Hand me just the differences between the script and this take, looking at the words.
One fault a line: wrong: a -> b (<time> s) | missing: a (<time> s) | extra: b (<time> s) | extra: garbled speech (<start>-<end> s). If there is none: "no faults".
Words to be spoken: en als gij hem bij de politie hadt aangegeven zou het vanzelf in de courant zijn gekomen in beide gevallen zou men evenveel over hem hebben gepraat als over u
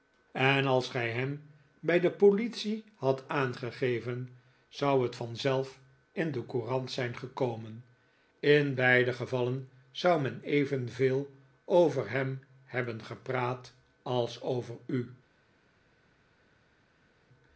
no faults